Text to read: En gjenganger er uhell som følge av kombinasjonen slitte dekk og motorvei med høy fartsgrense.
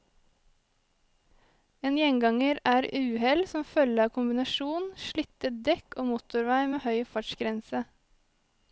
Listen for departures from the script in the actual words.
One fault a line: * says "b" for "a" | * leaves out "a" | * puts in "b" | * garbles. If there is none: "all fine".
all fine